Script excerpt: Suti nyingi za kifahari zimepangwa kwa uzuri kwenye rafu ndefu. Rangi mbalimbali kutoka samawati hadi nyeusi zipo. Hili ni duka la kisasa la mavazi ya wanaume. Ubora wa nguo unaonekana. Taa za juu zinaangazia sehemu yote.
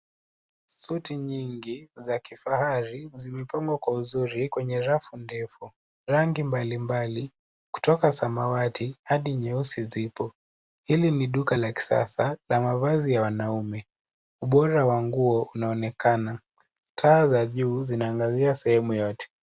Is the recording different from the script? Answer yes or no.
no